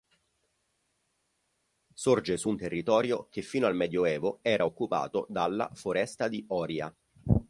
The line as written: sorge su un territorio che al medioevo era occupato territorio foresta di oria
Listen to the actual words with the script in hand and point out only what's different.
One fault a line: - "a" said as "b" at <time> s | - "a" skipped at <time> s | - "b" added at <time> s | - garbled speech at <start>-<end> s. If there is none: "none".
- "fino" added at 3.4 s
- "territorio" said as "dalla" at 5.3 s